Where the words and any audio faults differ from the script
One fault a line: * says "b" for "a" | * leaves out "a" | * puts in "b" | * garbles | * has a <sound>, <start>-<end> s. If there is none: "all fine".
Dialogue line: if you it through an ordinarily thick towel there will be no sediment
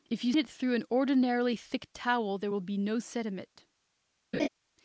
* has a laugh, 4.3-4.5 s